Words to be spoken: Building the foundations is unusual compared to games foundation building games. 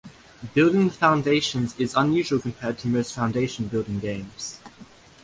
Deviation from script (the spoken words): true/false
true